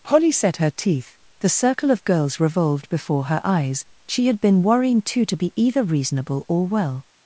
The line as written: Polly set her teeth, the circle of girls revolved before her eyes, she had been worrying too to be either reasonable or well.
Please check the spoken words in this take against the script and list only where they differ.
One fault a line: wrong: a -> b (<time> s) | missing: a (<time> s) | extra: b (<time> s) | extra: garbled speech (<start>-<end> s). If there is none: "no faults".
no faults